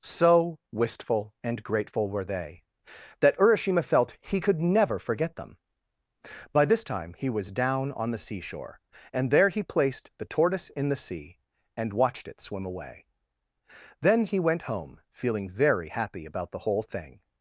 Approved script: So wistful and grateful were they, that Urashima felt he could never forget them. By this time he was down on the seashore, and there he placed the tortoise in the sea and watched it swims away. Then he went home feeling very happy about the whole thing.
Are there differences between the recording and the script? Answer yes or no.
yes